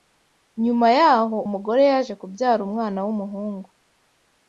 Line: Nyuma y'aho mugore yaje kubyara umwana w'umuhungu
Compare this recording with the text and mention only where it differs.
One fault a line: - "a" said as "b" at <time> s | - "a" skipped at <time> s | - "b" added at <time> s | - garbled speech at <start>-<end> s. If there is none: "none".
none